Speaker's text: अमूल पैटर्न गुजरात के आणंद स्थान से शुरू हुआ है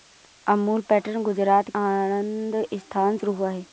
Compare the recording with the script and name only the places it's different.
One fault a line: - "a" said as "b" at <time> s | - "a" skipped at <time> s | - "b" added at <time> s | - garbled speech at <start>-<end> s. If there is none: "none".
- "के" skipped at 1.7 s
- "से" skipped at 3.2 s